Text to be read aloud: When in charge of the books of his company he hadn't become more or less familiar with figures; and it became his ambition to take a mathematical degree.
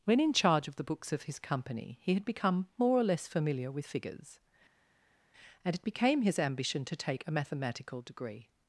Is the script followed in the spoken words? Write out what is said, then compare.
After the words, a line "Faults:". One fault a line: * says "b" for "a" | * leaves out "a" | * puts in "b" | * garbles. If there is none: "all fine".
When in charge of the books of his company he had become more or less familiar with figures; and it became his ambition to take a mathematical degree.
Faults:
* says "had" for "hadn't"